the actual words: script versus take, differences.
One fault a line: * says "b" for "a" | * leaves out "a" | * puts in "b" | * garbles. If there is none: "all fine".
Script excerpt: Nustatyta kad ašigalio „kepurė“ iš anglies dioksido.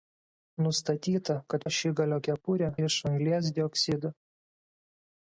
all fine